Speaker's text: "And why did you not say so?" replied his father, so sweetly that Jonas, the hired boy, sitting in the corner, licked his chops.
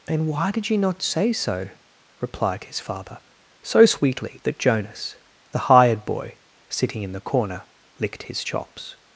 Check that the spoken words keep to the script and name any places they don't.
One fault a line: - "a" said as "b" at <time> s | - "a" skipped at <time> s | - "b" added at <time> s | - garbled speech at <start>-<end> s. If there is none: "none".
none